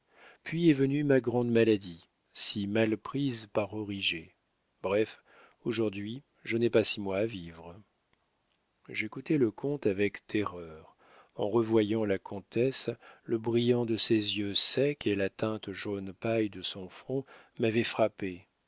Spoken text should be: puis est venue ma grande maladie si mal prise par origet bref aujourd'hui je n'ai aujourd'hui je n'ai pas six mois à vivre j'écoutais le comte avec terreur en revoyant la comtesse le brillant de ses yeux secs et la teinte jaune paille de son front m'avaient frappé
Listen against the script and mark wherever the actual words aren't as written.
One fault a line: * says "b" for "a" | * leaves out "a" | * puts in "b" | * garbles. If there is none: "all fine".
* leaves out "aujourd'hui je n'ai"